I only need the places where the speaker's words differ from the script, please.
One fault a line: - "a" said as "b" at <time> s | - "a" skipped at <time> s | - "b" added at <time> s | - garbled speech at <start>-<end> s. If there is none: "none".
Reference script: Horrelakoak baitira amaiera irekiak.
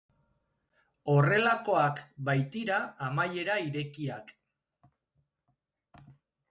none